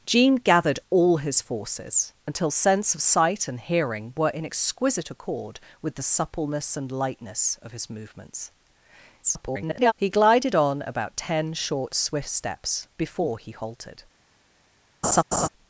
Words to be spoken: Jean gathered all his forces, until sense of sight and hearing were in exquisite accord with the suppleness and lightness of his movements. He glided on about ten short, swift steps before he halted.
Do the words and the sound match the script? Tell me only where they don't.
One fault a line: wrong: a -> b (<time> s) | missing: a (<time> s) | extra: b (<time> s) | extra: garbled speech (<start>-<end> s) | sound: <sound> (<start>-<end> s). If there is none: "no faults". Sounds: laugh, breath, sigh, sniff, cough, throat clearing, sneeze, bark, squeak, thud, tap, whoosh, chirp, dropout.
extra: garbled speech (9.2-9.9 s)
sound: laugh (15.0-15.5 s)